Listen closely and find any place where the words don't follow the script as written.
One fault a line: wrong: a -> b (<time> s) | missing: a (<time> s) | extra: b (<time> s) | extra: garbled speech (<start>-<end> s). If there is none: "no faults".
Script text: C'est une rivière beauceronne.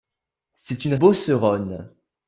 missing: rivière (0.9 s)